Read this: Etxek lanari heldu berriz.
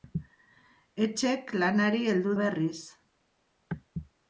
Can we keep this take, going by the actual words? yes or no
yes